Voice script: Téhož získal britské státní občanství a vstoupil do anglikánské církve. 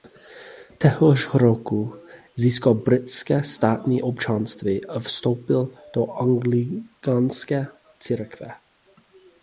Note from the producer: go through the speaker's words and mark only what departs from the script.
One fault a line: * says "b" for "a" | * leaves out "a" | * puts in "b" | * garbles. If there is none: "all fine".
* puts in "roku"